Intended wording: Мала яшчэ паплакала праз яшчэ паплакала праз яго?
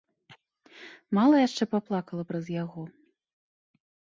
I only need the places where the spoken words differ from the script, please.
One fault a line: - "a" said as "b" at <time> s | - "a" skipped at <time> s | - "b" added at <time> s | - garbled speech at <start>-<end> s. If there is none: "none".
- "яшчэ паплакала праз" skipped at 2.5 s